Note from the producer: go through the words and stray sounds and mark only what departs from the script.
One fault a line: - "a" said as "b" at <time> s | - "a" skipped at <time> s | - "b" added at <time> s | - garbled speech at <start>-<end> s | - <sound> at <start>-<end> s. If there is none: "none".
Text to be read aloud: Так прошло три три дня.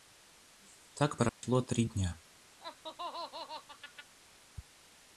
- dropout at 1.3-1.4 s
- "три" skipped at 1.8 s
- laugh at 2.6-4.1 s